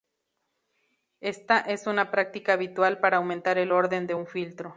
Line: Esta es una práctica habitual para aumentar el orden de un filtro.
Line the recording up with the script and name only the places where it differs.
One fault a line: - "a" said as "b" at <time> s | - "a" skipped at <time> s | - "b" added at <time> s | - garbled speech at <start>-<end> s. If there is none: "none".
none